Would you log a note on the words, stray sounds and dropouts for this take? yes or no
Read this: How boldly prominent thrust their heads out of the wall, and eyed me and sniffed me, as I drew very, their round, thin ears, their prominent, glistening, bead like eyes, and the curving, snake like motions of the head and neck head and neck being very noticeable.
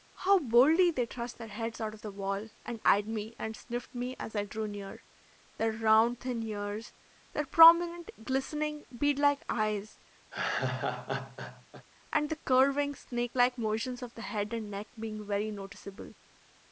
yes